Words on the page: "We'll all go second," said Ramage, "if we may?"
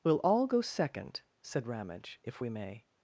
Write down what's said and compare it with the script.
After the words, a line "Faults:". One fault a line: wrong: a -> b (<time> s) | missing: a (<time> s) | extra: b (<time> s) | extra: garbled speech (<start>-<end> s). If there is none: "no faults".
"We'll all go second," said Ramage, "if we may?"
Faults:
no faults